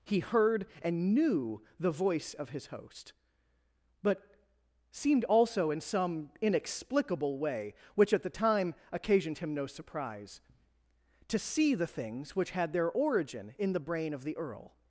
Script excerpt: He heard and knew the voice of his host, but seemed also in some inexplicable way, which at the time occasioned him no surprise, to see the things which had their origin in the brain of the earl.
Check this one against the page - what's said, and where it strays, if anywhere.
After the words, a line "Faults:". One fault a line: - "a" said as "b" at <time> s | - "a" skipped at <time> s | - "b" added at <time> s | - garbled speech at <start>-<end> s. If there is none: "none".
He heard and knew the voice of his host, but seemed also in some inexplicable way, which at the time occasioned him no surprise, to see the things which had their origin in the brain of the earl.
Faults:
none